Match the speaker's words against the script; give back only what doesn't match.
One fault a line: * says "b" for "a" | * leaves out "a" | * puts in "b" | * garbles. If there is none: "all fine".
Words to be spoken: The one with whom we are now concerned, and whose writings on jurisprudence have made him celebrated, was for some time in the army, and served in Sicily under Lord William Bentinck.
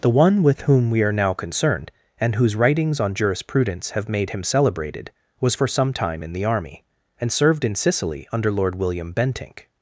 all fine